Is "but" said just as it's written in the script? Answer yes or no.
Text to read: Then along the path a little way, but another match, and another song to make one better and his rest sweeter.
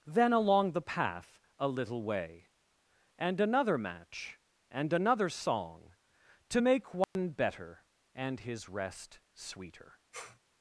no